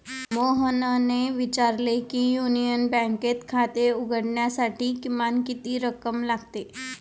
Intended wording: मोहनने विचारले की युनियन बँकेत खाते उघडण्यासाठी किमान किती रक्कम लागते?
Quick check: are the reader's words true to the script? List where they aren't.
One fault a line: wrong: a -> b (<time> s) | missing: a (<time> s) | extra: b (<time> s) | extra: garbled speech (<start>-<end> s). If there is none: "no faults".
no faults